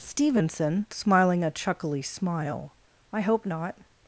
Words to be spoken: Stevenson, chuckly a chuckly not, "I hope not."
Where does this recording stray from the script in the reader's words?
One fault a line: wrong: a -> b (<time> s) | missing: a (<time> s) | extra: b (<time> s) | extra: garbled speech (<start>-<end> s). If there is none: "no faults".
wrong: chuckly -> smiling (0.9 s)
wrong: not -> smile (2.0 s)